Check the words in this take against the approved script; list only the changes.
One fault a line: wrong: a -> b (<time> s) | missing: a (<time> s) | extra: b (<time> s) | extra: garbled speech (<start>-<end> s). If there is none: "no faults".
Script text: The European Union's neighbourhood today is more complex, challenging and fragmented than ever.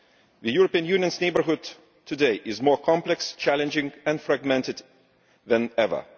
no faults